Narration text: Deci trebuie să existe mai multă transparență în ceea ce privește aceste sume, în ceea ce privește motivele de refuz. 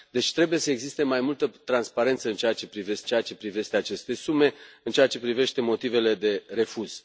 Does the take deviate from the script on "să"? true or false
false